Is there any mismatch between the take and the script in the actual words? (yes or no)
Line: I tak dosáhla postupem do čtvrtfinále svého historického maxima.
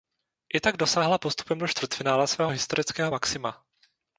no